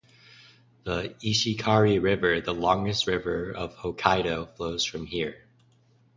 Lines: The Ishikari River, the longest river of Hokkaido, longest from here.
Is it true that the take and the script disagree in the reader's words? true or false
true